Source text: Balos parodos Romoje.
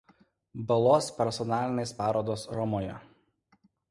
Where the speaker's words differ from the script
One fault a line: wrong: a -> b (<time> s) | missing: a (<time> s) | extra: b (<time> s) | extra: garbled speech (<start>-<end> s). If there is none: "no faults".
extra: personalinės (1.2 s)